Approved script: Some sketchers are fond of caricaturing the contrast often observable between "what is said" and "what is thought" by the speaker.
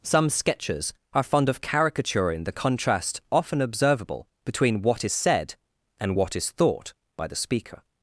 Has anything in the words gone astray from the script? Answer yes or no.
no